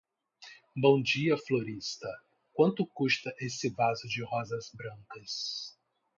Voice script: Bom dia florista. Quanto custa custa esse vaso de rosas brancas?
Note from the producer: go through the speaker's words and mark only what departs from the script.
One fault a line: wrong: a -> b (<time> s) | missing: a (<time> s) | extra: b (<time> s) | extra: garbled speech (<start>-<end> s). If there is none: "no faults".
missing: custa (3.3 s)